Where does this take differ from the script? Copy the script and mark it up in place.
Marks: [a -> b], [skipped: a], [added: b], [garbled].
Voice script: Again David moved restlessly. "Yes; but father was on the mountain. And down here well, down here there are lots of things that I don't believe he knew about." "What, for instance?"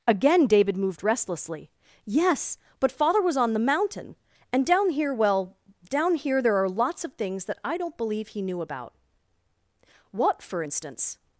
Again David moved restlessly. "Yes; but father was on the mountain. And down here well, down here there are lots of things that I don't believe he knew about." "What, for instance?"